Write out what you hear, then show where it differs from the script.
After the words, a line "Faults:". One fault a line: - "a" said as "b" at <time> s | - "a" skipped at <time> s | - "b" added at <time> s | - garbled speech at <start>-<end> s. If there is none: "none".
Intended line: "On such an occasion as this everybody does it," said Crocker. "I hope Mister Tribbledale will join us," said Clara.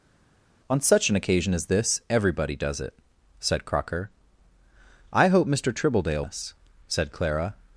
"On such an occasion as this everybody does it," said Crocker. "I hope Mister Tribbledale us," said Clara.
Faults:
- "will join" skipped at 6.2 s